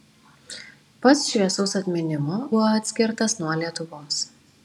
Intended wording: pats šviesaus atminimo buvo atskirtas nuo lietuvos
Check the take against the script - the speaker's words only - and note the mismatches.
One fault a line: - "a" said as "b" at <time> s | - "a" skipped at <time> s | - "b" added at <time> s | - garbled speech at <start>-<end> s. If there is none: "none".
none